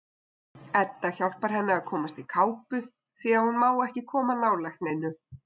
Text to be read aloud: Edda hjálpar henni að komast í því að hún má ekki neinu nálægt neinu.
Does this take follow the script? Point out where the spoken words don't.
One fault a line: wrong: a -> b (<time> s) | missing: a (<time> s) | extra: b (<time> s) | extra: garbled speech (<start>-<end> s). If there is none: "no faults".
extra: kápu (2.3 s)
wrong: neinu -> koma (4.1 s)